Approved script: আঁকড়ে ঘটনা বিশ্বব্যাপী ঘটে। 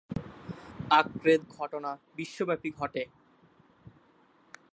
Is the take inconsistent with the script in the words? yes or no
no